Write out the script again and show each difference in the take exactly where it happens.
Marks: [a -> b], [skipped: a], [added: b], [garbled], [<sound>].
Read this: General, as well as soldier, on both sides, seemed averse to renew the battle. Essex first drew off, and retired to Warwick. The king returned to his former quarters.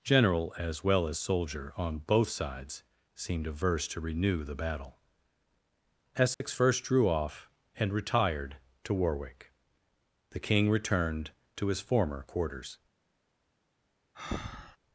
General, as well as soldier, on both sides, seemed averse to renew the battle. Essex [dropout] first drew off, and retired to Warwick. The king returned to his former quarters. [breath]